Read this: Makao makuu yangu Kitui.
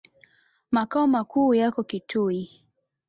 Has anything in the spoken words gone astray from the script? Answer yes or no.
yes